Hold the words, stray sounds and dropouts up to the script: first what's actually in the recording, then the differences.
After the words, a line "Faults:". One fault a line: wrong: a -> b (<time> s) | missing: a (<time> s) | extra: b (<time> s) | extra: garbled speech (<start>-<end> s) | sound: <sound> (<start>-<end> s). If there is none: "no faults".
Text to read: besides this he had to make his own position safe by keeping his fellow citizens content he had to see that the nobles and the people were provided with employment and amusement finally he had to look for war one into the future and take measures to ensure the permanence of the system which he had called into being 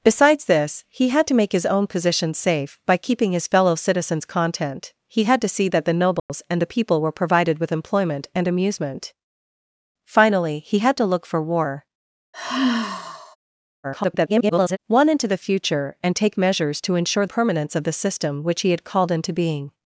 besides this he had to make his own position safe by keeping his fellow citizens content he had to see that the nobles and the people were provided with employment and amusement finally he had to look for war [garbled] one into the future and take measures to ensure permanence of the system which he had called into being
Faults:
sound: dropout (6.2-6.3 s)
sound: sigh (12.3-13.4 s)
extra: garbled speech (13.8-14.8 s)
missing: the (17.2 s)